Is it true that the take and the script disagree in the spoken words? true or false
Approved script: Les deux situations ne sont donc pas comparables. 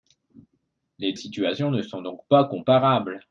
true